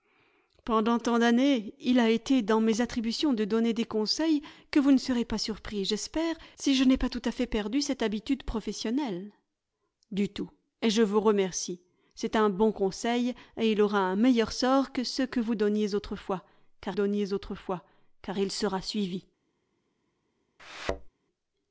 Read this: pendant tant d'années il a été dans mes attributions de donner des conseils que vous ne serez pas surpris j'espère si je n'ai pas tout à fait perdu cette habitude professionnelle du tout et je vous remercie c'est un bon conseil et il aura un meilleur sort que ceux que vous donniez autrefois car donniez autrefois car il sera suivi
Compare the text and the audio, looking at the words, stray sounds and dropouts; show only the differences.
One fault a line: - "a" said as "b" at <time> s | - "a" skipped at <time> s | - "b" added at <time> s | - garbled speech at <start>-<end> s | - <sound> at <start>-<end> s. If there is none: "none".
- thud at 20.6-21.1 s